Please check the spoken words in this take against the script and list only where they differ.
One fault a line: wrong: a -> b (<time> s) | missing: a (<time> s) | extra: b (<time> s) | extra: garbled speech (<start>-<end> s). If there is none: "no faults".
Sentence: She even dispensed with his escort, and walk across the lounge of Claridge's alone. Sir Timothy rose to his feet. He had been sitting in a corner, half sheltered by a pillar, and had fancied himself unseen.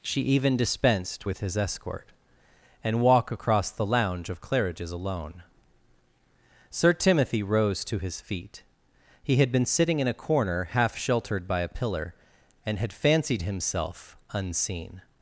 no faults